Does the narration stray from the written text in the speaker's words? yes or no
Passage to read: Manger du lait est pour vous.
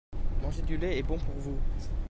yes